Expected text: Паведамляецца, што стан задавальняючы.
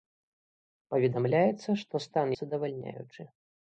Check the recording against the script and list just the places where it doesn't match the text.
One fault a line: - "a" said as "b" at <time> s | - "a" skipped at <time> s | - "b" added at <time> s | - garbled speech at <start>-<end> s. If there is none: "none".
none